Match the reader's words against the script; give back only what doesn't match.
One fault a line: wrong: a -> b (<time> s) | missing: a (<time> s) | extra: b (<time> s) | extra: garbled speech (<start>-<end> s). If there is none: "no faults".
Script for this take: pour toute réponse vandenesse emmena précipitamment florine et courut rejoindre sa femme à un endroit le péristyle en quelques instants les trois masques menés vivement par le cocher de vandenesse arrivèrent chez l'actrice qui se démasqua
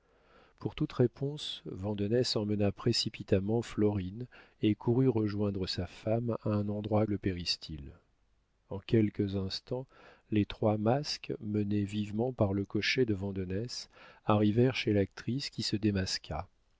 no faults